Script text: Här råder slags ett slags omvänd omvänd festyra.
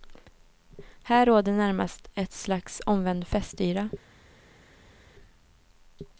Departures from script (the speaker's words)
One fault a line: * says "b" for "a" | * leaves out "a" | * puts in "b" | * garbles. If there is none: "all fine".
* says "närmast" for "slags"
* leaves out "omvänd"